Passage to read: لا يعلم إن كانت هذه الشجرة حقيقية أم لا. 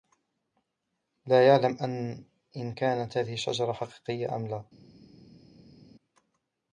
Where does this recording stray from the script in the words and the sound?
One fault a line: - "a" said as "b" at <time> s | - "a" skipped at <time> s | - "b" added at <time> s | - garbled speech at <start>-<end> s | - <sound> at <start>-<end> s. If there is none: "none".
none